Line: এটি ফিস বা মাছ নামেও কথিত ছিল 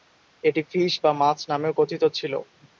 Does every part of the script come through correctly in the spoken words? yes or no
yes